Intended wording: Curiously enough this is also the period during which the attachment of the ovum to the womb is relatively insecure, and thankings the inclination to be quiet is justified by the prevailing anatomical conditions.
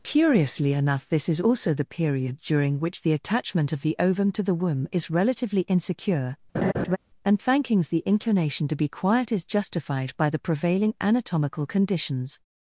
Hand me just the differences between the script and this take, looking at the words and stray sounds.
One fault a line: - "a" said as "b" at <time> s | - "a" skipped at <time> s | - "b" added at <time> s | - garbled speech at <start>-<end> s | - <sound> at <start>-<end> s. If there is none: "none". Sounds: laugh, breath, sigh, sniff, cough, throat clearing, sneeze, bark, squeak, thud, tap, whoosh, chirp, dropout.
- laugh at 6.5-7.0 s